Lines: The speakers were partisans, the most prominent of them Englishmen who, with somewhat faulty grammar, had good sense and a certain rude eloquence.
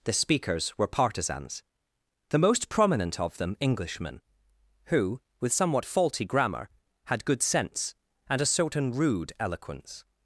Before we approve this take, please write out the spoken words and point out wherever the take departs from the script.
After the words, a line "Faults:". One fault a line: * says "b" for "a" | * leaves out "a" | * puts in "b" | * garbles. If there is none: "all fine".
The speakers were partisans, the most prominent of them Englishmen who, with somewhat faulty grammar, had good sense and a certain rude eloquence.
Faults:
all fine